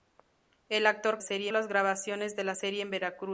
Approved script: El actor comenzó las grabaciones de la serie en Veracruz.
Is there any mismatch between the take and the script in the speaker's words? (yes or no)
yes